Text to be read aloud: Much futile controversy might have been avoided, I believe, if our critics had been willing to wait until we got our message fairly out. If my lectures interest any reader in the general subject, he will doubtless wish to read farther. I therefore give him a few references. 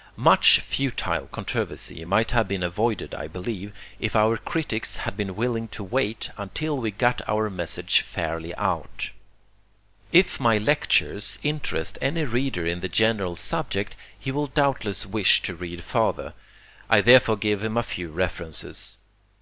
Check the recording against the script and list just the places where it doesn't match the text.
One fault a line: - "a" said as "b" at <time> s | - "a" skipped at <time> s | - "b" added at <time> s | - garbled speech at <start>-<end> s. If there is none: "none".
none